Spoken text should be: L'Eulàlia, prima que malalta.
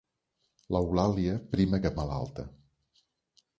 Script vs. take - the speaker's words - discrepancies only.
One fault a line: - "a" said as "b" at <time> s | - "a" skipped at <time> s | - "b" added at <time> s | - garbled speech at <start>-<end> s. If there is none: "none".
none